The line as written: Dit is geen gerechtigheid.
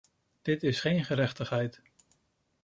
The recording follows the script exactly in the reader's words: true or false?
true